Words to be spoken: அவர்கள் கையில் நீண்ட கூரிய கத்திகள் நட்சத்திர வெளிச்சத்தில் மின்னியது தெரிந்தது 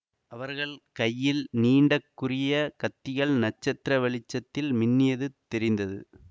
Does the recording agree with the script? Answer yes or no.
yes